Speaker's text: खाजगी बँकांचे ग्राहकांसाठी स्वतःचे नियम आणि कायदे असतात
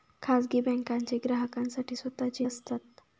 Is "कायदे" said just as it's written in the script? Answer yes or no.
no